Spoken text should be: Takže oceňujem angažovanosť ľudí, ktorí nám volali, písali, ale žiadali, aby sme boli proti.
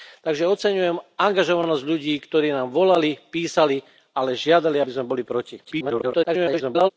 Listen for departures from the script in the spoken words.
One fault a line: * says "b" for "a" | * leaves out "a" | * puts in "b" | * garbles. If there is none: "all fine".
* garbles